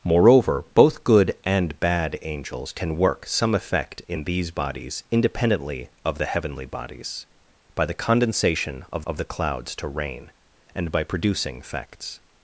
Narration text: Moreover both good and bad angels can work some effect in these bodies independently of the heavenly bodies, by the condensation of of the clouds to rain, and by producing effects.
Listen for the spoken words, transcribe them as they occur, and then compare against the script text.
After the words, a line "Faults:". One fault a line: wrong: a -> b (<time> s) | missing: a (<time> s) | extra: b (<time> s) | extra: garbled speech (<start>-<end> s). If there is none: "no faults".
Moreover both good and bad angels can work some effect in these bodies independently of the heavenly bodies, by the condensation of of the clouds to rain, and by producing effects.
Faults:
no faults